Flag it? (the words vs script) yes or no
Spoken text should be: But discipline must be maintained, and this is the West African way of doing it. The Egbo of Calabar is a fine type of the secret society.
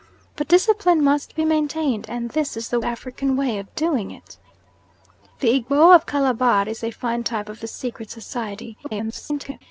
yes